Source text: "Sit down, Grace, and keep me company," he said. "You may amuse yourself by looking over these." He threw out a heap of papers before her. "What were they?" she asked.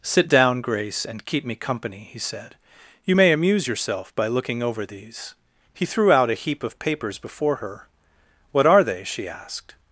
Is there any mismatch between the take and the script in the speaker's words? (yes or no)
yes